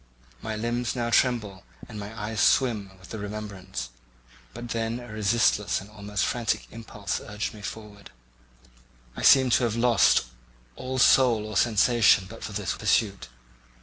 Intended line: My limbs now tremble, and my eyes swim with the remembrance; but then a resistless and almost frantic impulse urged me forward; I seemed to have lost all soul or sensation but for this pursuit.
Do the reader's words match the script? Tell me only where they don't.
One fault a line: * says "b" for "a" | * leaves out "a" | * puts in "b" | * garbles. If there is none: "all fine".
all fine